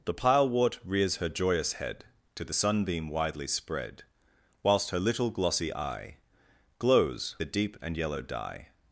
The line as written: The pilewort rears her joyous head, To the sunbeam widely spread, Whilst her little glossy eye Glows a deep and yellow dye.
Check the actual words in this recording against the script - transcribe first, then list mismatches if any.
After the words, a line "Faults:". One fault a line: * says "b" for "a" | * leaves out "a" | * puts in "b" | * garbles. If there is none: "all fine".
The pilewort rears her joyous head, To the sunbeam widely spread, Whilst her little glossy eye Glows a deep and yellow dye.
Faults:
all fine